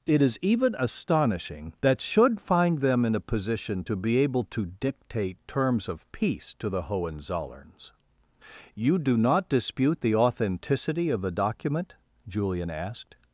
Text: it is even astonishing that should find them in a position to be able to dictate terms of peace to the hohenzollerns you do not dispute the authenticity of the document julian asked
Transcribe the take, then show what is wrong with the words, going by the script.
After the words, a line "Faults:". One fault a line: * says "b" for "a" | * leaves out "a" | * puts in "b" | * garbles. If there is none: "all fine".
it is even astonishing that should find them in a position to be able to dictate terms of peace to the hohenzollerns you do not dispute the authenticity of the document julian asked
Faults:
all fine